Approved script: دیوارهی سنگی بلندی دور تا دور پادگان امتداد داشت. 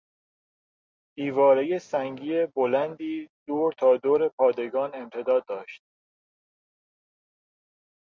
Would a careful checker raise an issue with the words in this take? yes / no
no